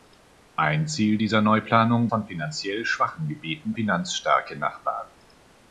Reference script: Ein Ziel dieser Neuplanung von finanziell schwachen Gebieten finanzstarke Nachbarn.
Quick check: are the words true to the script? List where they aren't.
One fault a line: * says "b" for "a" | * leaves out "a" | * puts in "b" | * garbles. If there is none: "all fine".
all fine